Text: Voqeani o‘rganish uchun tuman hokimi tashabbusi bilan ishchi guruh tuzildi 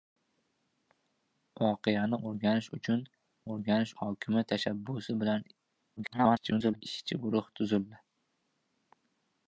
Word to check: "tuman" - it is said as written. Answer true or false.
false